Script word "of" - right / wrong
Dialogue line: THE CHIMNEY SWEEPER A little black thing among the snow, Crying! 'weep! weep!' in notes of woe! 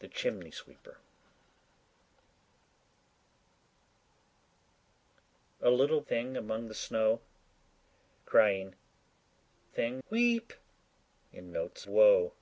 wrong